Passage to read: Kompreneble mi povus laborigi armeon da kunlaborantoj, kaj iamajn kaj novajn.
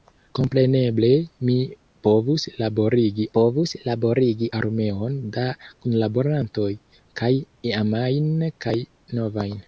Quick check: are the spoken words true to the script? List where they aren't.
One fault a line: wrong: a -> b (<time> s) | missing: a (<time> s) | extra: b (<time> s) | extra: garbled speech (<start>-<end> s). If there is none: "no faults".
extra: povus laborigi (3.4 s)